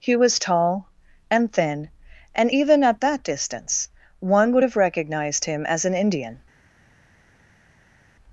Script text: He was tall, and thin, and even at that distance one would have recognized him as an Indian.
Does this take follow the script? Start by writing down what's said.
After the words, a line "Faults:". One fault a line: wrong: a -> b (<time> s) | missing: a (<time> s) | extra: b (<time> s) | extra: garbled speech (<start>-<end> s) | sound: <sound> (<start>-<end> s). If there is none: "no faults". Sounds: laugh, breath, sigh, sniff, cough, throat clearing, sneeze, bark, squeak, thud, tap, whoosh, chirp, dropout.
He was tall, and thin, and even at that distance one would have recognized him as an Indian.
Faults:
no faults